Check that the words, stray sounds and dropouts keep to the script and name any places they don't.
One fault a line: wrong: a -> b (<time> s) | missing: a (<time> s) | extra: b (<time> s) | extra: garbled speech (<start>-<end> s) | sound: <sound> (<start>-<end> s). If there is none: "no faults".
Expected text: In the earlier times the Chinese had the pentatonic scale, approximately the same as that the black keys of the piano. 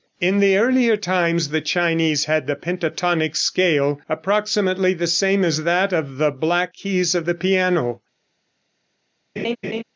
extra: of (5.9 s)
sound: laugh (9.4-9.8 s)